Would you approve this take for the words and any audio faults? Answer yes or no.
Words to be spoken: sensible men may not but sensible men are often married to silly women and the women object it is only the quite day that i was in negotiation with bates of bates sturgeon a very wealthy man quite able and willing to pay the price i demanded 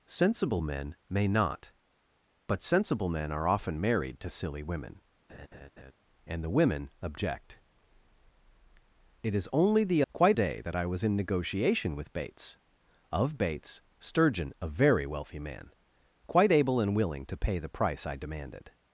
no